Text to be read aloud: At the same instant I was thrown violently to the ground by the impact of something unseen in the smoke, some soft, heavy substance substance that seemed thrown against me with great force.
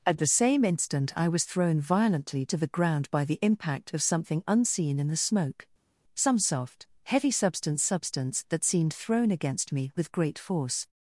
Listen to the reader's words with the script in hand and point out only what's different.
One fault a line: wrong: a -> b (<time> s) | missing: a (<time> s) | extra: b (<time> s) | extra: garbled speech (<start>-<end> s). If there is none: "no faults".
no faults